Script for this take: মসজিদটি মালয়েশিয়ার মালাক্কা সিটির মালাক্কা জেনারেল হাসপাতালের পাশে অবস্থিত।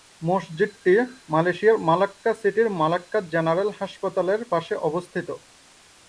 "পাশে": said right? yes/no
yes